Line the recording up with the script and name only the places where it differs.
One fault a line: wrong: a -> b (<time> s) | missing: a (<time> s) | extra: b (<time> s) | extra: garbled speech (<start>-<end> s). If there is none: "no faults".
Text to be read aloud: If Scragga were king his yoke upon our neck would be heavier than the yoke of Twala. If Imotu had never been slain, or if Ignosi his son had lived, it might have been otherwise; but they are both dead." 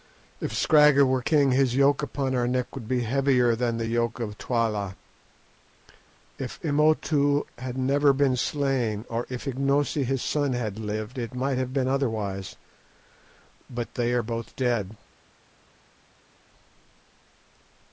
no faults